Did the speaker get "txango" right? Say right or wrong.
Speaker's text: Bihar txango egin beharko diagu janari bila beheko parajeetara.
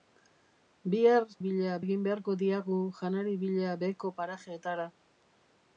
wrong